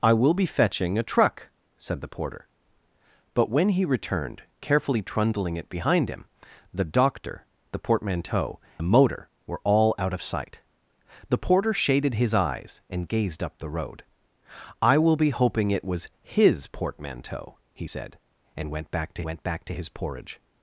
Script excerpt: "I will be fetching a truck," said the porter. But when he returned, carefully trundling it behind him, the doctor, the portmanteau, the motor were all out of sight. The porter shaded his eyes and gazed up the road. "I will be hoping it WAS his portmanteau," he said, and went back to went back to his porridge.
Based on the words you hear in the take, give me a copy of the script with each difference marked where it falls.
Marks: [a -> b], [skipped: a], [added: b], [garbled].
"I will be fetching a truck," said the porter. But when he returned, carefully trundling it behind him, the doctor, the portmanteau, the motor were all out of sight. The porter shaded his eyes and gazed up the road. "I will be hoping it WAS his portmanteau," he said, and went back to went back to his porridge.